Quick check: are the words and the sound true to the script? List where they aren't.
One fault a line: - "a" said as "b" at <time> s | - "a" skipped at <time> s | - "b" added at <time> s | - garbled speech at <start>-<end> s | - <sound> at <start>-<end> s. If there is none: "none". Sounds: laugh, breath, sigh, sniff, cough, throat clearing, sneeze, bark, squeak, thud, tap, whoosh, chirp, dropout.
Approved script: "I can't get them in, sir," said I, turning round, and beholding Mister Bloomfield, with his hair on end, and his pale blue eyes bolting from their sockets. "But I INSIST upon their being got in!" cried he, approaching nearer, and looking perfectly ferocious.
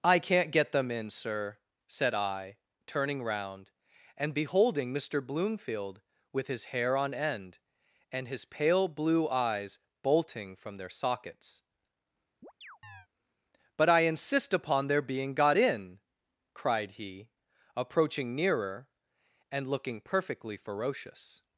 - chirp at 12.4-13.1 s